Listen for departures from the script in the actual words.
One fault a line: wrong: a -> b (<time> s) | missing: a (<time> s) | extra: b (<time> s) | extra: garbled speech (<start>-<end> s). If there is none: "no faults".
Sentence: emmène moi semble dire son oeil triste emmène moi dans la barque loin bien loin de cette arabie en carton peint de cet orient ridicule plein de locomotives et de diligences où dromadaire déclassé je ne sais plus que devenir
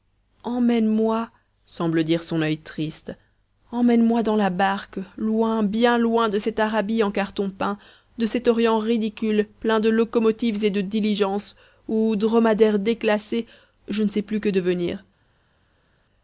no faults